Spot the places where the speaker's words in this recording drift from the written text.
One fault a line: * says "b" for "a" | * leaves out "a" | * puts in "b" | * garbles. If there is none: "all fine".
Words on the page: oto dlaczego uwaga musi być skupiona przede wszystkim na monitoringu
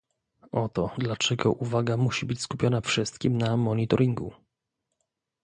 * leaves out "przede"